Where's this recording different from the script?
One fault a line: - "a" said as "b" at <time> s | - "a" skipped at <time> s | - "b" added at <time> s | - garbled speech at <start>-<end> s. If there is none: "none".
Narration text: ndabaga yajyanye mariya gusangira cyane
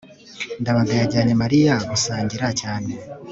none